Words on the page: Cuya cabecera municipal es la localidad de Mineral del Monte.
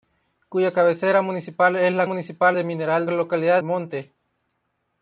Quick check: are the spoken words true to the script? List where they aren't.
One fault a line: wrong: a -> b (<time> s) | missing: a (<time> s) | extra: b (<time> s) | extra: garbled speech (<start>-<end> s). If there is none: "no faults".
wrong: localidad -> municipal (2.0 s)
wrong: del -> localidad (3.1 s)